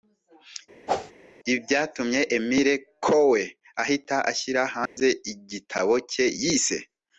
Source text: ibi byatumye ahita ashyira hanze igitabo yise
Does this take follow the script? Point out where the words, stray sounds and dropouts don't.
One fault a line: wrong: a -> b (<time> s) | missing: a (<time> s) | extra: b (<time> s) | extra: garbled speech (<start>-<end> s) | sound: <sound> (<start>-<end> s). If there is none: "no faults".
sound: whoosh (0.9-1.1 s)
extra: emile coue (2.4 s)
sound: dropout (4.9-5.0 s)
extra: cye (6.1 s)